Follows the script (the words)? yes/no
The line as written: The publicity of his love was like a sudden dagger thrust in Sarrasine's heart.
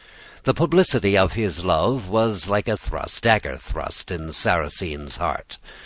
no